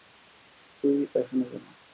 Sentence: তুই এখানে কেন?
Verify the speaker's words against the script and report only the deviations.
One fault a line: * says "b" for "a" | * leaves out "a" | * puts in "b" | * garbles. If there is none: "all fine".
all fine